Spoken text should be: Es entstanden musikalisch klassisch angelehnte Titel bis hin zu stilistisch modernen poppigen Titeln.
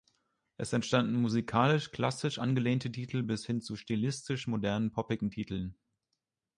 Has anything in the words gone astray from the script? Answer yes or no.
no